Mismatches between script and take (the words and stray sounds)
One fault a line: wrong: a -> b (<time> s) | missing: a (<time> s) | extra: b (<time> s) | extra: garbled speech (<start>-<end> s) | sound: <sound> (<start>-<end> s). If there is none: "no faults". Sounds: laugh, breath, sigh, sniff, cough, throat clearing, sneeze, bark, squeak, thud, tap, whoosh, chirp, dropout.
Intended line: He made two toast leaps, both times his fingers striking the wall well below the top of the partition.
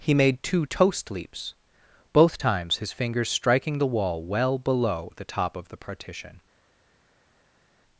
no faults